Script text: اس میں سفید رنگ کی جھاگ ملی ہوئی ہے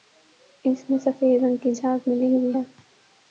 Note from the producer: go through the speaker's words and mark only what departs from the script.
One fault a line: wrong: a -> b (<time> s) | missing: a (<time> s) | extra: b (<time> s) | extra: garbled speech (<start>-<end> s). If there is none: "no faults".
no faults